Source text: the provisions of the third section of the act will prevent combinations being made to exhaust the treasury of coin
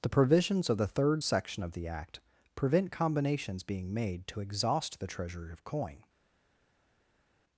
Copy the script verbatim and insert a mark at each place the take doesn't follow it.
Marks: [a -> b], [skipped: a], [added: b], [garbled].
the provisions of the third section of the act [skipped: will] prevent combinations being made to exhaust the treasury of coin